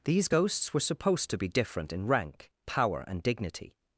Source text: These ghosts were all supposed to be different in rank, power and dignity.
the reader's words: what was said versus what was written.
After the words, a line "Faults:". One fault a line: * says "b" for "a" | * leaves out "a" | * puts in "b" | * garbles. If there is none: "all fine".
These ghosts were supposed to be different in rank, power and dignity.
Faults:
* leaves out "all"